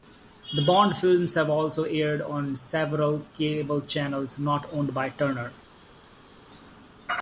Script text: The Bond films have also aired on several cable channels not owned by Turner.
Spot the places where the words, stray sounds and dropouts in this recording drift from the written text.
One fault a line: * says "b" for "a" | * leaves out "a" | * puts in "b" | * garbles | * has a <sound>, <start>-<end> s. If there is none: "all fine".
all fine